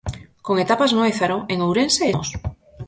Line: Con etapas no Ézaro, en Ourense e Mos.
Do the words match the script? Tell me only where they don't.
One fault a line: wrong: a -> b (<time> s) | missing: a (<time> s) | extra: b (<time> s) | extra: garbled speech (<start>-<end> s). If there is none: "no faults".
no faults